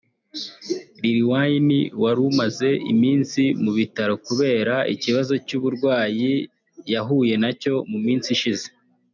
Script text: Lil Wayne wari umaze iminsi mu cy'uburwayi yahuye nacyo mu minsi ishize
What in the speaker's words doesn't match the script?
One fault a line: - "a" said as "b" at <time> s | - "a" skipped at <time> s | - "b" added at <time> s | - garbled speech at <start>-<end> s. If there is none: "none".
- "bitaro kubera ikibazo" added at 3.8 s